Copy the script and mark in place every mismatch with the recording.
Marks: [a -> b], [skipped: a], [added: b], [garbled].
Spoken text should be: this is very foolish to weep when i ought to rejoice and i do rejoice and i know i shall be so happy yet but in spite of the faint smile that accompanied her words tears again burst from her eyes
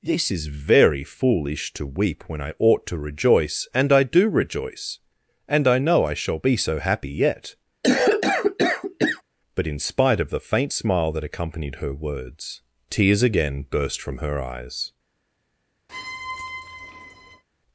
this is very foolish to weep when i ought to rejoice and i do rejoice and i know i shall be so happy yet but in spite of the faint smile that accompanied her words tears again burst from her eyes